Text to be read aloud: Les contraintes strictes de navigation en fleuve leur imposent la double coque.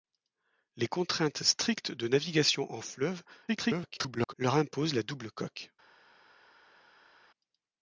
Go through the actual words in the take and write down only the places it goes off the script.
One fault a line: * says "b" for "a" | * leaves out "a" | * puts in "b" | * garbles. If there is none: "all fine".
* garbles